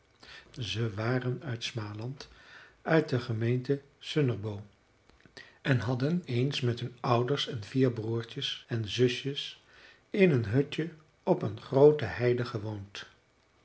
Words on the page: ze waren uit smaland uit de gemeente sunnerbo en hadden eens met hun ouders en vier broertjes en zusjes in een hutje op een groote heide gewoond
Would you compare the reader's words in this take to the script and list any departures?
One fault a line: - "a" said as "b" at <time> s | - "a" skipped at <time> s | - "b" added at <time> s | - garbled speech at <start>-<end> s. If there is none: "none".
none